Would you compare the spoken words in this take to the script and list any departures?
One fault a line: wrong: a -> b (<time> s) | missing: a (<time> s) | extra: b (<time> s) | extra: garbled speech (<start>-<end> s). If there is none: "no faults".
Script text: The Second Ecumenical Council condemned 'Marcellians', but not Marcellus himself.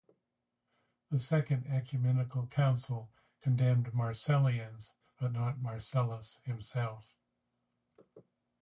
no faults